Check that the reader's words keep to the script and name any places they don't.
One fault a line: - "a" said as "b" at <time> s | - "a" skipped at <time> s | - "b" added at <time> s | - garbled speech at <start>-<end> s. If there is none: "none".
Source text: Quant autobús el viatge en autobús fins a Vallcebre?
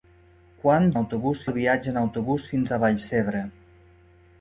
none